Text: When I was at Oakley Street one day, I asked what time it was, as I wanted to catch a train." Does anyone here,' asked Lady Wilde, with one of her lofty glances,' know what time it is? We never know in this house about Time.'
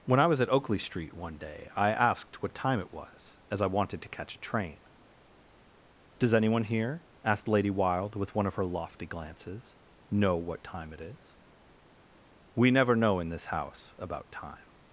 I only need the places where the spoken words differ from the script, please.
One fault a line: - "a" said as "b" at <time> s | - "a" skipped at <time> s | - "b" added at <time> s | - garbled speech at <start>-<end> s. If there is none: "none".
none